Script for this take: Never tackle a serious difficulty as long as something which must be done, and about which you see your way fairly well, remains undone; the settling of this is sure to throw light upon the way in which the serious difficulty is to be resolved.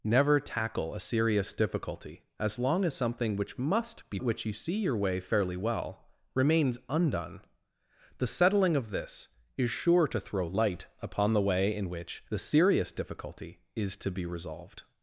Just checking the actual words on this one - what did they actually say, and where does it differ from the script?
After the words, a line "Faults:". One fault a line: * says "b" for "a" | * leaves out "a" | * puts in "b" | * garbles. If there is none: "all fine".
Never tackle a serious difficulty as long as something which must be which you see your way fairly well, remains undone; the settling of this is sure to throw light upon the way in which the serious difficulty is to be resolved.
Faults:
* leaves out "done and about"